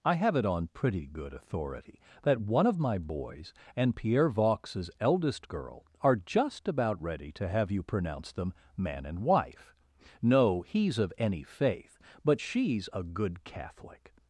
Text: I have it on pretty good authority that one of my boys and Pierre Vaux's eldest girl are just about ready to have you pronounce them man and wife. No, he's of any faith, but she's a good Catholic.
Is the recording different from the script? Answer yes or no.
no